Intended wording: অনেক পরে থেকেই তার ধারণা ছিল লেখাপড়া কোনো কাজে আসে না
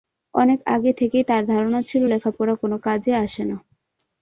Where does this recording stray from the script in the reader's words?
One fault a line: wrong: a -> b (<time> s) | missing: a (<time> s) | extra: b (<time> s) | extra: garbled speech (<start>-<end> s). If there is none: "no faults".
wrong: পরে -> আগে (0.7 s)